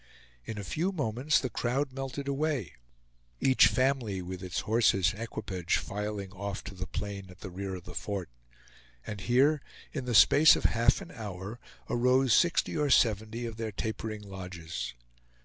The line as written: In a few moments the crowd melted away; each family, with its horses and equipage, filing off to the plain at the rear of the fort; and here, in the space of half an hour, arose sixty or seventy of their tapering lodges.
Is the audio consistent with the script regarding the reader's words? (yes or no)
no